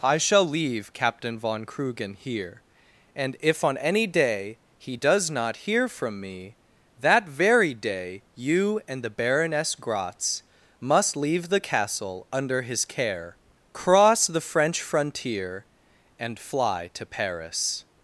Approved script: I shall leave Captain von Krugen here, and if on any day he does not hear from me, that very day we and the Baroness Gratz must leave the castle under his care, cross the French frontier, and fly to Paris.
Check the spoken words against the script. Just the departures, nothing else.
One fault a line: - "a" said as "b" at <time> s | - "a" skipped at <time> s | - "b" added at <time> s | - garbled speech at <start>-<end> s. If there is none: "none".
- "we" said as "you" at 8.3 s